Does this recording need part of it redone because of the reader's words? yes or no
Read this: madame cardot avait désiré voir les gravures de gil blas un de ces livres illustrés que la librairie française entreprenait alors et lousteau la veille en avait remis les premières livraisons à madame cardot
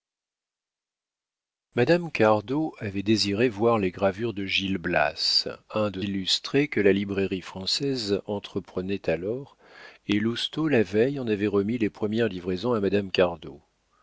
yes